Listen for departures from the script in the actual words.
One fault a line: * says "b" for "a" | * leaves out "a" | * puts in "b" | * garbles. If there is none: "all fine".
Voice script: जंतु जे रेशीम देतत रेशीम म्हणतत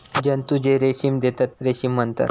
all fine